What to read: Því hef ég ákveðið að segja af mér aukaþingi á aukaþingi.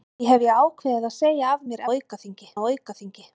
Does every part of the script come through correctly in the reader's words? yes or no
yes